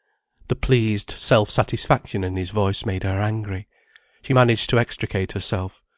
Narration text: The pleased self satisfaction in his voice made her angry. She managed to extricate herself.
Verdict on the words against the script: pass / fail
pass